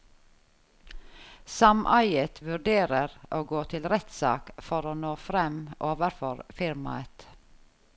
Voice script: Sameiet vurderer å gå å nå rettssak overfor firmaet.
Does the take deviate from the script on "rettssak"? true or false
true